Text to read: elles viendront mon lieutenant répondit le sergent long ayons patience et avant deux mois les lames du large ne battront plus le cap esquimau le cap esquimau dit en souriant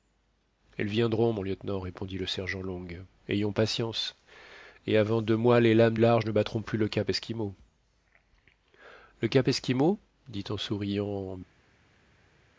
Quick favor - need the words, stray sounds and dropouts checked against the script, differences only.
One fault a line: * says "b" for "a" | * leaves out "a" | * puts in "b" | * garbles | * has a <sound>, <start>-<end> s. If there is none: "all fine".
* leaves out "du"